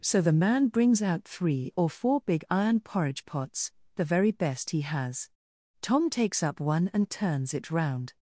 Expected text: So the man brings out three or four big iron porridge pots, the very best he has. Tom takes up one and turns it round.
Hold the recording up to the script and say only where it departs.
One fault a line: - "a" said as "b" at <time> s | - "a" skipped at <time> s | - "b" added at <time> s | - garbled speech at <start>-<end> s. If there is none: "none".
none